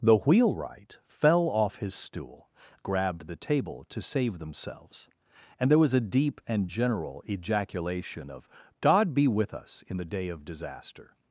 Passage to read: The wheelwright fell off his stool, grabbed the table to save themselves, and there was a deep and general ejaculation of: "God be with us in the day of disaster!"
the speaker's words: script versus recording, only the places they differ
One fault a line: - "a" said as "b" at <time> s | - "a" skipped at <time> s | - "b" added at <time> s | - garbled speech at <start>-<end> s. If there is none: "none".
none